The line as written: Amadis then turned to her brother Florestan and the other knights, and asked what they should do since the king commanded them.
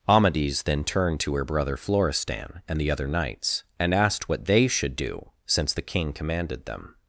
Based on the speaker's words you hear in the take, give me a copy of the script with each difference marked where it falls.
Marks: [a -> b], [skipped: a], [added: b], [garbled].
Amadis then turned to her brother Florestan and the other knights, and asked what they should do since the king commanded them.